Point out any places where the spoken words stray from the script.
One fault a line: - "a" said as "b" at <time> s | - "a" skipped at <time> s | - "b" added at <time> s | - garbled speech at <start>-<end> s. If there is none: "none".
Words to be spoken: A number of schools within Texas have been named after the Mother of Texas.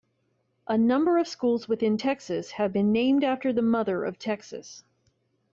none